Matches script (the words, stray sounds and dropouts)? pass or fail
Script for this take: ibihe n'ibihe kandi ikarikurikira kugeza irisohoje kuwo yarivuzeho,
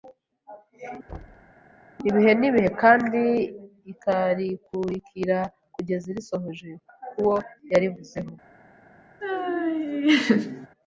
fail